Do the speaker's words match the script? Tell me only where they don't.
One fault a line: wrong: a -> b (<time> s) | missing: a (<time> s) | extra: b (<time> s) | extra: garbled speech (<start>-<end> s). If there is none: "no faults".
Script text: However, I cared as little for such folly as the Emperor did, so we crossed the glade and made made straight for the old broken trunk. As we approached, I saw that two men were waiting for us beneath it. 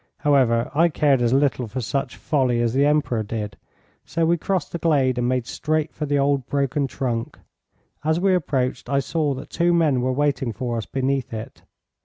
missing: made (5.5 s)